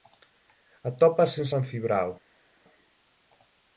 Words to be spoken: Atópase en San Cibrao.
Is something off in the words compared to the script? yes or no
no